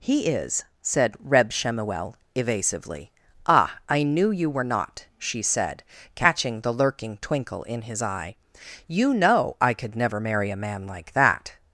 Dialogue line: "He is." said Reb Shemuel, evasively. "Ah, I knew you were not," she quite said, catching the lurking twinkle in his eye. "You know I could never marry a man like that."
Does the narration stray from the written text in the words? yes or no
yes